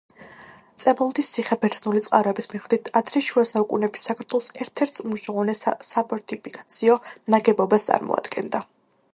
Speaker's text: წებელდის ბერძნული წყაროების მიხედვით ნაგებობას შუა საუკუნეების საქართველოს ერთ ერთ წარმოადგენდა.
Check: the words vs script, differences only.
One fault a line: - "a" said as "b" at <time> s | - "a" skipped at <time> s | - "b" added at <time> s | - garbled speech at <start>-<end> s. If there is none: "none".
- "ციხე" added at 1.3 s
- "ნაგებობას" said as "ადრე" at 3.0 s
- "უმნიშვნელოვანეს საფორტიფიკაციო ნაგებობას" added at 5.1 s